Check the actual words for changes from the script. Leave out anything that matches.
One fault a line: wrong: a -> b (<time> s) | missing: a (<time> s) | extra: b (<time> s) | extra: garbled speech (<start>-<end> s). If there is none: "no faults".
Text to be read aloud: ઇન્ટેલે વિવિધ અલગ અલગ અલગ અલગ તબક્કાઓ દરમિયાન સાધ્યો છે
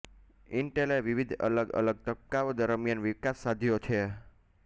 missing: અલગ અલગ (2.0 s)
extra: વિકાસ (3.0 s)